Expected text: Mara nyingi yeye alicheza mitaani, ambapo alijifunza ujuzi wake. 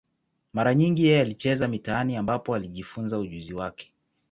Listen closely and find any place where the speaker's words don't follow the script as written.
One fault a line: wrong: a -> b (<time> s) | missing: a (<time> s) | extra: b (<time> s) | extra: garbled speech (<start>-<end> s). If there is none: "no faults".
no faults